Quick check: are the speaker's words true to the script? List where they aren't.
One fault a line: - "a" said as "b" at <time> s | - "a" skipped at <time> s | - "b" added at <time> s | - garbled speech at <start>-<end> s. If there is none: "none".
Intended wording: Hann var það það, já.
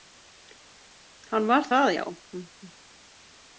- "það" skipped at 1.9 s